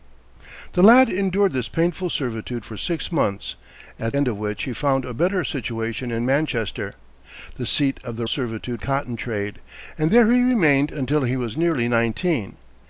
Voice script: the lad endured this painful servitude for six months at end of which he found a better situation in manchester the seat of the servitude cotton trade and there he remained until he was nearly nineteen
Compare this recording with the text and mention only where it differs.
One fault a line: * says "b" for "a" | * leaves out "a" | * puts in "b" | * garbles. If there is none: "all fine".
all fine